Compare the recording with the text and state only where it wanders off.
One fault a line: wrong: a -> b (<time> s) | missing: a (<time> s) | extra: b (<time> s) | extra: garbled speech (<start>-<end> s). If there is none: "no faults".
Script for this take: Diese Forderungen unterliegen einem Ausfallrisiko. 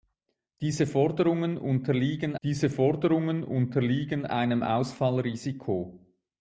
extra: diese Forderungen unterliegen (2.4 s)